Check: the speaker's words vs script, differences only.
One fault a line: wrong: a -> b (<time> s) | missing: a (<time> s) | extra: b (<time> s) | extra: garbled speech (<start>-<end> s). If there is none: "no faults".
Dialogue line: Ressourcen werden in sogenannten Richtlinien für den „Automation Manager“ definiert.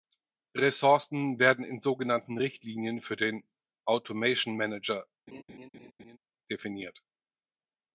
no faults